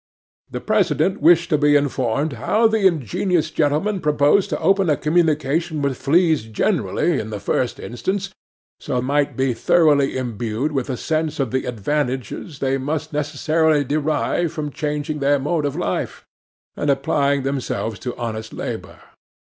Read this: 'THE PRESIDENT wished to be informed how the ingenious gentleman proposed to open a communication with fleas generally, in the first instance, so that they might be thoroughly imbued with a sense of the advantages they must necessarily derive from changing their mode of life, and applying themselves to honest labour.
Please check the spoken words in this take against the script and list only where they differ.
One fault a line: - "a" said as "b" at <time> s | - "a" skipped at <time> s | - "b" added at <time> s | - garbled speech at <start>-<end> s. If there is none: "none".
- "that they" skipped at 9.0 s